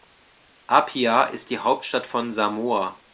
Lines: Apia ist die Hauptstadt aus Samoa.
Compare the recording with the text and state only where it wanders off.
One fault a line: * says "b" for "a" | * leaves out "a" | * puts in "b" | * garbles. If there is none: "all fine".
* says "von" for "aus"